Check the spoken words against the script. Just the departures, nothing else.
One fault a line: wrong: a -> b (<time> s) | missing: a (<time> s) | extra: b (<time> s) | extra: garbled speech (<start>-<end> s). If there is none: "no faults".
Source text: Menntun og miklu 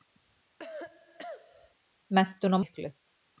no faults